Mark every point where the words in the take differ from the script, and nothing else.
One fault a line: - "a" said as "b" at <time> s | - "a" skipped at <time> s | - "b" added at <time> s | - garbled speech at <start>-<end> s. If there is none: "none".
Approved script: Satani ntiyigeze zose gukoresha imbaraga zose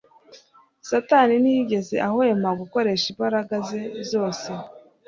- "zose" said as "ahwema" at 2.1 s
- "ze" added at 3.7 s